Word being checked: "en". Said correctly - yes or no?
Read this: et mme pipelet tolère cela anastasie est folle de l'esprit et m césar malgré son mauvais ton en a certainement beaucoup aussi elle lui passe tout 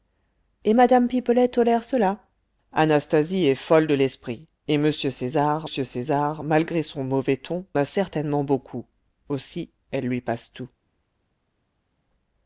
no